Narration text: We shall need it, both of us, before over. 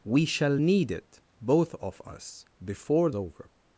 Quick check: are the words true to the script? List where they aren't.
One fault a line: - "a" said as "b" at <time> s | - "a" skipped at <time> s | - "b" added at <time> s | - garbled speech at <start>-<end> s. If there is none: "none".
none